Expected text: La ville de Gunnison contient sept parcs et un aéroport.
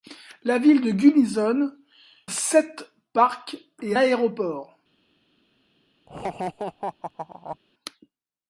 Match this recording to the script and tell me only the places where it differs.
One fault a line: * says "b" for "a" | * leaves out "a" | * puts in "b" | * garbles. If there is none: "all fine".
* leaves out "contient"
* leaves out "un"